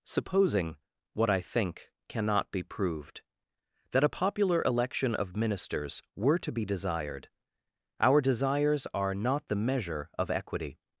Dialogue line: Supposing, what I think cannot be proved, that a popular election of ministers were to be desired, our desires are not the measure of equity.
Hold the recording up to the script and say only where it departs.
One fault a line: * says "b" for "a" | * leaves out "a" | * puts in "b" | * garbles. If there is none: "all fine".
all fine